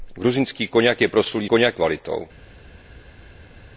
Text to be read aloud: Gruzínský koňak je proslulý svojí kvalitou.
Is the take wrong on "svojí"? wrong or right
wrong